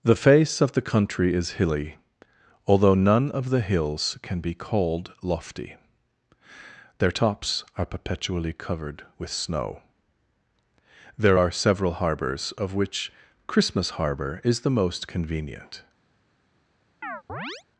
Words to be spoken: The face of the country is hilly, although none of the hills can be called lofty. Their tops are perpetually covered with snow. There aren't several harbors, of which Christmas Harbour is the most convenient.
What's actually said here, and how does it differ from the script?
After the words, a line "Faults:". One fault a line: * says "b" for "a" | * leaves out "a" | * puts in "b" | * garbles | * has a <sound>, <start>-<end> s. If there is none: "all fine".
The face of the country is hilly, although none of the hills can be called lofty. Their tops are perpetually covered with snow. There are several harbors, of which Christmas Harbour is the most convenient.
Faults:
* says "are" for "aren't"
* has a chirp, 17.0-17.6 s